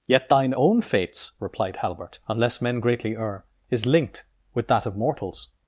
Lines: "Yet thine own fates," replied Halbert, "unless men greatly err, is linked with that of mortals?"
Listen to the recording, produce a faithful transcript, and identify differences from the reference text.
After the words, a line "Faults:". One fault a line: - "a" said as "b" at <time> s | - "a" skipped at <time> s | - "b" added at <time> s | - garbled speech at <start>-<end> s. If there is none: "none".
"Yet thine own fates," replied Halbert, "unless men greatly err, is linked with that of mortals?"
Faults:
none